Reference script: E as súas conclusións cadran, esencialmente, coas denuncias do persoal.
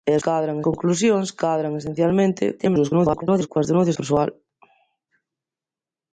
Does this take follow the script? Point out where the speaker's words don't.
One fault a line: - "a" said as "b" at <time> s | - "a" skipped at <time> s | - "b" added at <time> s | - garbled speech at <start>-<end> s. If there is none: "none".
- "súas" said as "cadran" at 0.2 s
- garbled speech at 2.6-3.5 s
- "do" skipped at 4.0 s